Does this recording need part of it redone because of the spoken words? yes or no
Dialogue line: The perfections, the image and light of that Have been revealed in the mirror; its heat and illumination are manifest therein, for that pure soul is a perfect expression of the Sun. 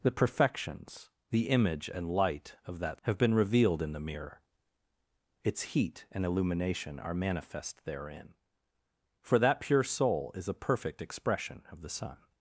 no